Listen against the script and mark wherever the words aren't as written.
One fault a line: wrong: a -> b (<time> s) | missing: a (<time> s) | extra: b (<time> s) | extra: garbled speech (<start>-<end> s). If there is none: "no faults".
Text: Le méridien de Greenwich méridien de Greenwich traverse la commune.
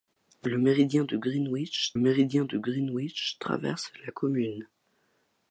no faults